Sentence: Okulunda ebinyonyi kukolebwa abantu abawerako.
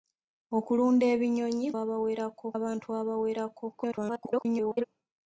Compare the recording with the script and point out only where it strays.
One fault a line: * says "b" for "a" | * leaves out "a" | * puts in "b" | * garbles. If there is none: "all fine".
* says "abawerako" for "kukolebwa"
* garbles